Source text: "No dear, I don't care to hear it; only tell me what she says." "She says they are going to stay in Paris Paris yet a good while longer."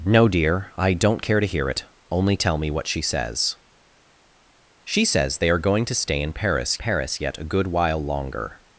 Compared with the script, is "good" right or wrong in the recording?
right